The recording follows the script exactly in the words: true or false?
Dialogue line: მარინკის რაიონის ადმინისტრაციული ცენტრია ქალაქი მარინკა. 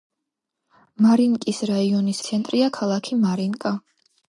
false